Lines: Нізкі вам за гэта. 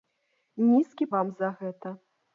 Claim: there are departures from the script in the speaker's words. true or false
false